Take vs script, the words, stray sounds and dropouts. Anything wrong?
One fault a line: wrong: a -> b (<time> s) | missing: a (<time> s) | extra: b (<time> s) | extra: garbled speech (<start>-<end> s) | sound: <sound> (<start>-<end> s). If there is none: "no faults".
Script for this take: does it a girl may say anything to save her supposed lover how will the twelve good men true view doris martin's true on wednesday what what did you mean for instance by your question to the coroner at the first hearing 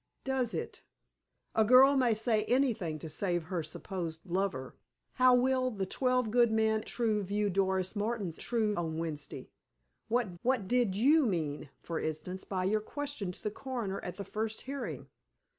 no faults